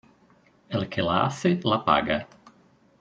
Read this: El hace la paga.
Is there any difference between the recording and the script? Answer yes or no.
yes